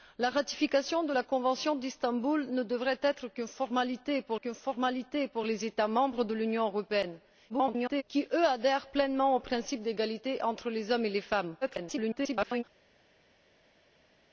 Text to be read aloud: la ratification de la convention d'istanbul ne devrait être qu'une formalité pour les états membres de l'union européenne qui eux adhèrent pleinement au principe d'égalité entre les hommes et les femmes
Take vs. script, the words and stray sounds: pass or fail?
fail